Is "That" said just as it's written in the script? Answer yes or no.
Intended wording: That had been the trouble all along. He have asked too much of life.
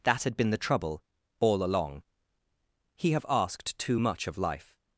yes